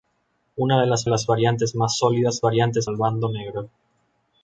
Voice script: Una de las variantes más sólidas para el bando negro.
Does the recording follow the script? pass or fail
fail